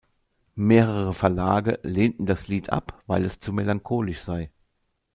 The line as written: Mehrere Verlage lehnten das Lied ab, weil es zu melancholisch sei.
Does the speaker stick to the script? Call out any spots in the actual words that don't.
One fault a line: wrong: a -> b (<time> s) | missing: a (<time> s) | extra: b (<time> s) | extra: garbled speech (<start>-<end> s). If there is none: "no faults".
no faults